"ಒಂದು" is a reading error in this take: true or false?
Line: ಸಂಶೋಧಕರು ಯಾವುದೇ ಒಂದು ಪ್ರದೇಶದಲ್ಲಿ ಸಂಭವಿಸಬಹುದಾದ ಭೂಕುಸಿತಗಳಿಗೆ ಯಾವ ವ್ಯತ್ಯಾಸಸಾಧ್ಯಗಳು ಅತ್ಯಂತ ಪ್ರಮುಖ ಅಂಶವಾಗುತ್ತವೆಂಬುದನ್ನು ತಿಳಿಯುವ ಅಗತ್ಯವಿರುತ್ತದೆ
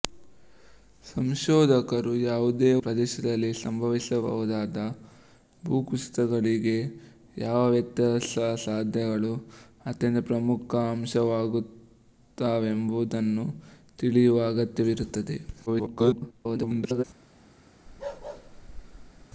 true